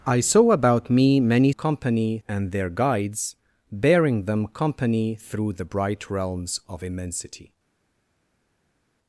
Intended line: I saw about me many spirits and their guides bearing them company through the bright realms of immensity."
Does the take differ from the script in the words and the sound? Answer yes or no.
yes